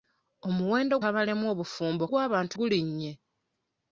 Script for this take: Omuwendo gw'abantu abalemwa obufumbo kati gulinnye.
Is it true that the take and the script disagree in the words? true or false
true